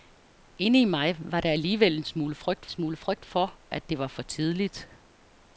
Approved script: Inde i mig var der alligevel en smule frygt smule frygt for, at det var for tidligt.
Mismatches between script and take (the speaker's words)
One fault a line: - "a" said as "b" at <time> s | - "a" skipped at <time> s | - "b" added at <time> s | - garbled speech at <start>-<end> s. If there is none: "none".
none